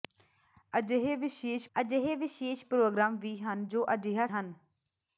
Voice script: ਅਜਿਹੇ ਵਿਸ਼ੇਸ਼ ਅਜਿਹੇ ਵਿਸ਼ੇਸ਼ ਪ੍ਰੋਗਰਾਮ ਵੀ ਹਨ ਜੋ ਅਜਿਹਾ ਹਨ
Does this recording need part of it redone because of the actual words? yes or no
no